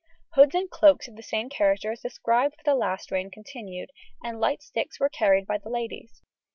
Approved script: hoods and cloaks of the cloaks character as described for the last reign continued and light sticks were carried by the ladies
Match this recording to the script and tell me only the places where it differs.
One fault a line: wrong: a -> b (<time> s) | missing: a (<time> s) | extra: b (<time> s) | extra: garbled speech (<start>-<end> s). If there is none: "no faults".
wrong: cloaks -> same (1.2 s)